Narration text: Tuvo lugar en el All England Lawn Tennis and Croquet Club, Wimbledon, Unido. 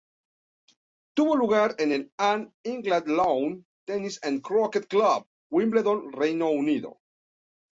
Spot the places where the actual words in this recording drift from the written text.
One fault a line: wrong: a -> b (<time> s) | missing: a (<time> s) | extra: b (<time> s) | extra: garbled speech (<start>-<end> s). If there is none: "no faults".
extra: Reino (6.1 s)